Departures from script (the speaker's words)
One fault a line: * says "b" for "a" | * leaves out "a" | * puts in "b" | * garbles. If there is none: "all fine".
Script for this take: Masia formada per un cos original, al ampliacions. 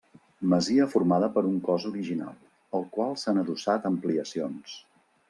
* puts in "qual s'han adossat"